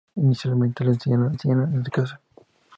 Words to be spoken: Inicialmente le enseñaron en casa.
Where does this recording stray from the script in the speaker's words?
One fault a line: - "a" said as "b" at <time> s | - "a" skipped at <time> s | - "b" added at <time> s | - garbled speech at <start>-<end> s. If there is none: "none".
- "enseñaron" added at 1.3 s